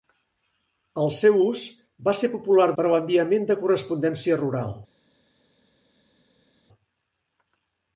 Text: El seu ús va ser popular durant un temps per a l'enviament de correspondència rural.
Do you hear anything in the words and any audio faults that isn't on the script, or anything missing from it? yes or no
yes